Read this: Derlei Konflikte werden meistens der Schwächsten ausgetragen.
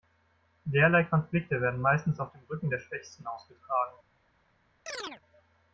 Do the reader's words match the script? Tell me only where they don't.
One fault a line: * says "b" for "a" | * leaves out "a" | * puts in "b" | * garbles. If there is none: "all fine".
* puts in "auf dem Rücken"